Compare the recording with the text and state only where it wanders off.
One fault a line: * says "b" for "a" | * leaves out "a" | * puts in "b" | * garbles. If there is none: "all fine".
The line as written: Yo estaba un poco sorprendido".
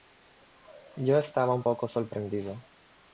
all fine